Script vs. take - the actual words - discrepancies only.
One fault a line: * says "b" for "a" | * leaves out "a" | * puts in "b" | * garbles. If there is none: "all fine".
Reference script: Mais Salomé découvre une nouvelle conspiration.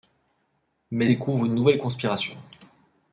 * leaves out "Salomé"